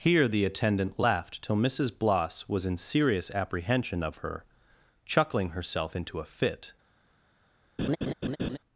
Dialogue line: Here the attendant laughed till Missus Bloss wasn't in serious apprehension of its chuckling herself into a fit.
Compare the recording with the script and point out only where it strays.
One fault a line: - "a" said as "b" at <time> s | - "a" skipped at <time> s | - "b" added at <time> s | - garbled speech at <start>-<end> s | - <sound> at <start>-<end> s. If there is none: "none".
- "wasn't" said as "was" at 2.5 s
- "its" said as "her" at 4.2 s
- laugh at 7.8-8.6 s